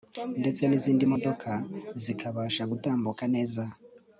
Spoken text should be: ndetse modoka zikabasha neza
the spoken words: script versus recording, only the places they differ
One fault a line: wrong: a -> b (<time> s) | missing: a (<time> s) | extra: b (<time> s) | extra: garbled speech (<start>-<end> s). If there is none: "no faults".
extra: n'izindi (0.7 s)
extra: gutambuka (2.7 s)